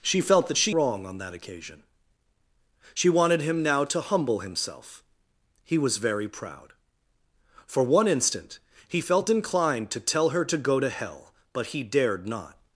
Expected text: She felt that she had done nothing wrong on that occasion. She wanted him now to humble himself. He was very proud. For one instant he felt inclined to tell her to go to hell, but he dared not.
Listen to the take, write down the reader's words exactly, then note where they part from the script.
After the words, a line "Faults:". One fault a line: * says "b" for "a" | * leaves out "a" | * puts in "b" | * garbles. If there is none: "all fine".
She felt that she wrong on that occasion. She wanted him now to humble himself. He was very proud. For one instant he felt inclined to tell her to go to hell, but he dared not.
Faults:
* leaves out "had done nothing"